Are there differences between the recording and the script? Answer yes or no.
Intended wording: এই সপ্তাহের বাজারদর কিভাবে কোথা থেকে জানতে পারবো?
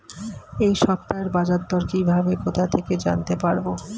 no